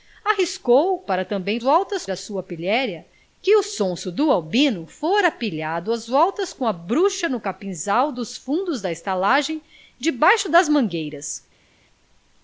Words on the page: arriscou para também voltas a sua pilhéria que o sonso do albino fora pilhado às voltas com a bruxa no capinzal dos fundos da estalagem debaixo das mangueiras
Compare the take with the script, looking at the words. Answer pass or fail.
pass